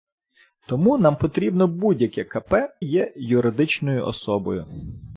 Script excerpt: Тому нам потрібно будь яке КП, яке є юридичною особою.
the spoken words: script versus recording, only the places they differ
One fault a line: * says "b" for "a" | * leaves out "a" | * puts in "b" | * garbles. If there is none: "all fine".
* leaves out "яке"